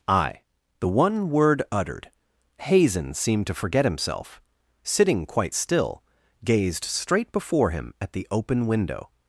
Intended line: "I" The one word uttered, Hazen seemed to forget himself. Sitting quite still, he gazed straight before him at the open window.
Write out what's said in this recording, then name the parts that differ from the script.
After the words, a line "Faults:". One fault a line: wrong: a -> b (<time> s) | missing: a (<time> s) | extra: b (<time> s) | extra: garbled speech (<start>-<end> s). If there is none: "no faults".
"I" The one word uttered, Hazen seemed to forget himself. Sitting quite still, gazed straight before him at the open window.
Faults:
missing: he (6.0 s)